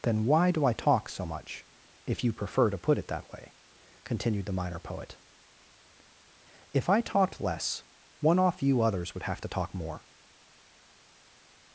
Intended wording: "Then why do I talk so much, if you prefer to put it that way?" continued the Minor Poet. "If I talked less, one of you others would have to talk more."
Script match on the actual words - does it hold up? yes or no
no